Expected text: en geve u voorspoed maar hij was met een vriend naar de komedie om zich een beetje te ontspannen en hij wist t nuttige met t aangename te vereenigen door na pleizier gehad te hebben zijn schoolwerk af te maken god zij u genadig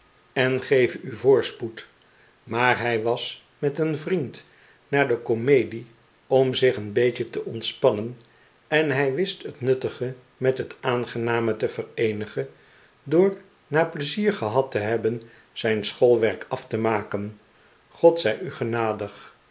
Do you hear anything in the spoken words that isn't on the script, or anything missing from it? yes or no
no